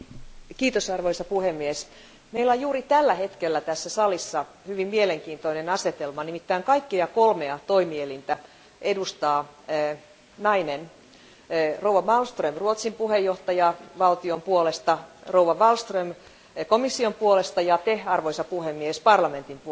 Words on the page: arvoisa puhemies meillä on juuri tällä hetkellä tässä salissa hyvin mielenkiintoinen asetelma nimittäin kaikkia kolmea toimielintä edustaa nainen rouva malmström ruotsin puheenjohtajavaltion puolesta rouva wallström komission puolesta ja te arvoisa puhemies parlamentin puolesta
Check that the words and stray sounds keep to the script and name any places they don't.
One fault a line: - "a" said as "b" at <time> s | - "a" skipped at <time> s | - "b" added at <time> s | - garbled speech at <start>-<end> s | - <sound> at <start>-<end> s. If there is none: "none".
none